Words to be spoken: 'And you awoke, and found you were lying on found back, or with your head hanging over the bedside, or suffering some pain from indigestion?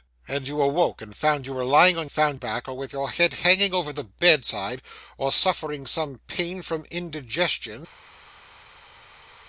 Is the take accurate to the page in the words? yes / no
yes